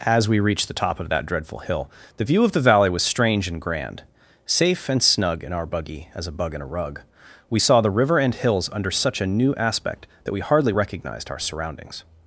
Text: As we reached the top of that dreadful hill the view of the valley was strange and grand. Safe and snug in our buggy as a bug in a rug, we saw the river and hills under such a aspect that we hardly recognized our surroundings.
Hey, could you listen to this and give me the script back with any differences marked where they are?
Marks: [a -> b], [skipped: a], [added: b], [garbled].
As we reached the top of that dreadful hill the view of the valley was strange and grand. Safe and snug in our buggy as a bug in a rug, we saw the river and hills under such a [added: new] aspect that we hardly recognized our surroundings.